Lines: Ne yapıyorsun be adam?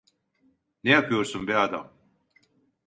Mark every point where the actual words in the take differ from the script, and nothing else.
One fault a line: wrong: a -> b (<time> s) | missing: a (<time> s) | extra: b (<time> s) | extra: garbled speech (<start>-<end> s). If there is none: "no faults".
no faults